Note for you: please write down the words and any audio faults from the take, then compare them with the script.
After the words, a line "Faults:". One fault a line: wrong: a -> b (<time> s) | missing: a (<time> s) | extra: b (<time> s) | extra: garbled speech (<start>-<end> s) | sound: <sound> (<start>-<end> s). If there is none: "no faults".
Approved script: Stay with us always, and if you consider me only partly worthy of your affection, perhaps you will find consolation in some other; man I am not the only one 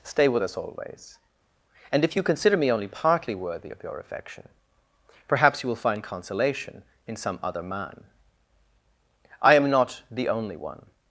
Stay with us always, and if you consider me only partly worthy of your affection, perhaps you will find consolation in some other; man I am not the only one
Faults:
no faults